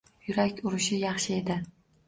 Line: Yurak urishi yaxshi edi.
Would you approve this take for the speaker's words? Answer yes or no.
yes